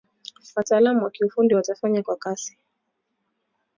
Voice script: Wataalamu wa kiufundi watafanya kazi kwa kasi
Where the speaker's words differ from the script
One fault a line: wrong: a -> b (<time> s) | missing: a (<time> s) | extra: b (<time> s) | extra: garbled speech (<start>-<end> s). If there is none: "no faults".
missing: kazi (2.0 s)